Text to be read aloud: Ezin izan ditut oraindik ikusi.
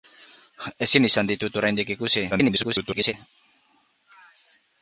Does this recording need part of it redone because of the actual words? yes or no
yes